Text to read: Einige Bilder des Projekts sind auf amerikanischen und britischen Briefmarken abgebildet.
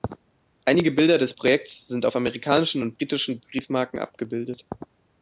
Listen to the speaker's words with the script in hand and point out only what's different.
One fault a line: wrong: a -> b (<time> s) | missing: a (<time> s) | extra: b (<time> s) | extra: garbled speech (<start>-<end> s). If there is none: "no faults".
no faults